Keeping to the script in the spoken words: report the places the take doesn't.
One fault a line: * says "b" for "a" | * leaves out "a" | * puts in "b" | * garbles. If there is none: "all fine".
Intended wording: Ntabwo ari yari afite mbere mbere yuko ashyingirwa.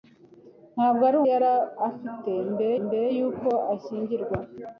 all fine